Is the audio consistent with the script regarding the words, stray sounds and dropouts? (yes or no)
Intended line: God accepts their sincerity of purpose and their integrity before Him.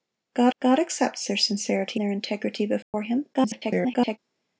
no